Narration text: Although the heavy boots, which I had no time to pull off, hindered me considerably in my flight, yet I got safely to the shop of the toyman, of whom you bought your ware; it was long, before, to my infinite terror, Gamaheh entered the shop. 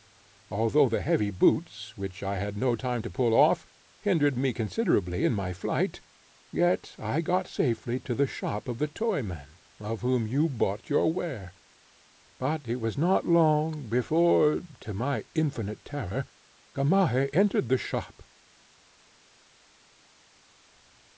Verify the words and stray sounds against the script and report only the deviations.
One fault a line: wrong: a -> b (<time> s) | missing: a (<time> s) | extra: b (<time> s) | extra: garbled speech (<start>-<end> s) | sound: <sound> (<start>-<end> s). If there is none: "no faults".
extra: but (12.4 s)
extra: not (13.0 s)